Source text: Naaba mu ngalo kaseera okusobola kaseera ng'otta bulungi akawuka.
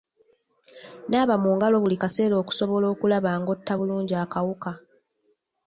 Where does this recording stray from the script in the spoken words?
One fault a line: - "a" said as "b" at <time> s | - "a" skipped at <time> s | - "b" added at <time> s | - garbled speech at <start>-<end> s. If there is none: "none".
- "buli" added at 1.8 s
- "kaseera" said as "okulaba" at 2.9 s